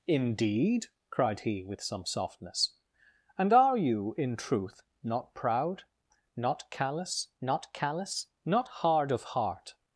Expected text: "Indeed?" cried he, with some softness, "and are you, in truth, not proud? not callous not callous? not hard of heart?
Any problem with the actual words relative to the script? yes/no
no